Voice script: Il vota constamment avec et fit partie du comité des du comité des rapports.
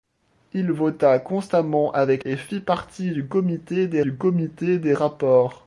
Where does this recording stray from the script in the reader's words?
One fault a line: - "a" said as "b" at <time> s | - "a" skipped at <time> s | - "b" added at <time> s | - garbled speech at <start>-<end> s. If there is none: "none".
none